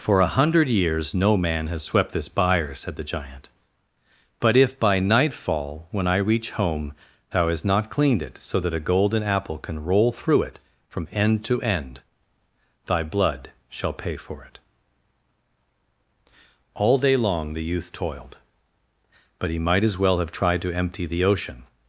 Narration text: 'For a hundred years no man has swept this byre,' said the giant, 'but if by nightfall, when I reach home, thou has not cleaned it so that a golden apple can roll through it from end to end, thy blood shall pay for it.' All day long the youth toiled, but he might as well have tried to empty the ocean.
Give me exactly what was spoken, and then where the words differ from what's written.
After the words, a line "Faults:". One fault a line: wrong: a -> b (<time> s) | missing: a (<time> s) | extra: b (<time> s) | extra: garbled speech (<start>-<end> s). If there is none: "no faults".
'For a hundred years no man has swept this byre,' said the giant, 'but if by nightfall, when I reach home, thou hast not cleaned it so that a golden apple can roll through it from end to end, thy blood shall pay for it.' All day long the youth toiled, but he might as well have tried to empty the ocean.
Faults:
wrong: has -> hast (7.5 s)